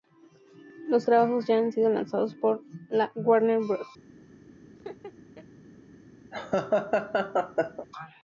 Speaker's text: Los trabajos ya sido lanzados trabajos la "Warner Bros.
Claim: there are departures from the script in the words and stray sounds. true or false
true